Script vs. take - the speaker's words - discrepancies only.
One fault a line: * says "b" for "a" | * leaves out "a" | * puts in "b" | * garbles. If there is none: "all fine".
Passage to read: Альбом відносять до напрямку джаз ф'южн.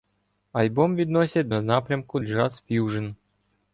all fine